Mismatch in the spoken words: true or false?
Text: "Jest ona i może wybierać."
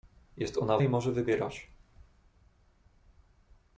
false